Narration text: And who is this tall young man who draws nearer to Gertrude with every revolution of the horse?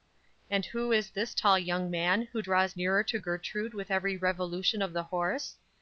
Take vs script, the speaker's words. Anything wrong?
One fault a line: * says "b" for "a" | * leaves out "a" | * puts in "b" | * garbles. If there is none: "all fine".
all fine